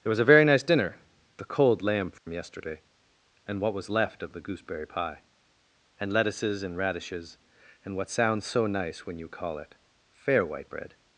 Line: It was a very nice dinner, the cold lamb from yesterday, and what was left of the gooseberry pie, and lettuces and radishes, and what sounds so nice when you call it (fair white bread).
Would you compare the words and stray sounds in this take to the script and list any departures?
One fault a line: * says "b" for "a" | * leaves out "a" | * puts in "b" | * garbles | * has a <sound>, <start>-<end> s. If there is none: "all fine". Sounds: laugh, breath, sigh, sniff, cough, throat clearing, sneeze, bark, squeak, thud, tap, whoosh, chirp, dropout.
* says "There" for "It"
* has a dropout, 2.2-2.3 s